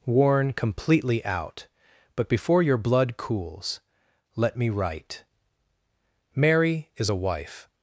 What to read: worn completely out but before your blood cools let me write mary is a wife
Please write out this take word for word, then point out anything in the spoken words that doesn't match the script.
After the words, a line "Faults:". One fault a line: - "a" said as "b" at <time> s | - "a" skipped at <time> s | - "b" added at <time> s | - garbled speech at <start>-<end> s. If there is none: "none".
worn completely out but before your blood cools let me write mary is a wife
Faults:
none